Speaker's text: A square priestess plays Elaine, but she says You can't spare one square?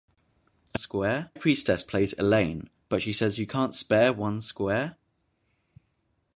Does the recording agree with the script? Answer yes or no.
yes